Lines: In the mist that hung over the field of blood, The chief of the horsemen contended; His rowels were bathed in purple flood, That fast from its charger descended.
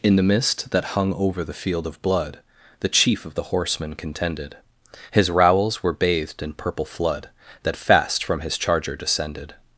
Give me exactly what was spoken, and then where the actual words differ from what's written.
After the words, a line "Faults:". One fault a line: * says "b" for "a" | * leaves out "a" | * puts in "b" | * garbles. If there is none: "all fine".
In the mist that hung over the field of blood, The chief of the horsemen contended; His rowels were bathed in purple flood, That fast from his charger descended.
Faults:
* says "his" for "its"